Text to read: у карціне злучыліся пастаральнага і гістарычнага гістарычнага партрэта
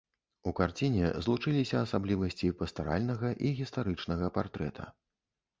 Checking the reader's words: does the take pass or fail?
fail